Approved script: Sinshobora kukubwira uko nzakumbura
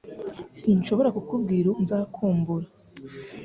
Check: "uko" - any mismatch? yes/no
yes